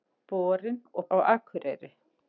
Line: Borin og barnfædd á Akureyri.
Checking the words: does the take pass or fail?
fail